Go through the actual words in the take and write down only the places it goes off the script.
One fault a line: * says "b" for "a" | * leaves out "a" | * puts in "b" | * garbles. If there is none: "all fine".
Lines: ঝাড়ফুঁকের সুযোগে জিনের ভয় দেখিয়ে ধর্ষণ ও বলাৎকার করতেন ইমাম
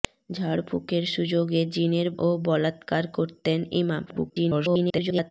* leaves out "ভয় দেখিয়ে ধর্ষণ"
* garbles